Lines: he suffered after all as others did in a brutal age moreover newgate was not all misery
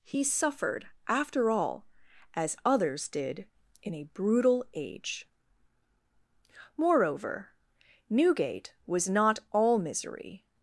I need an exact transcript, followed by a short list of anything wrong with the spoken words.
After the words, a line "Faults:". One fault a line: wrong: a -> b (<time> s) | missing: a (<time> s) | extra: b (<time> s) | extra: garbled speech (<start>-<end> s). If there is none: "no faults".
he suffered after all as others did in a brutal age moreover newgate was not all misery
Faults:
no faults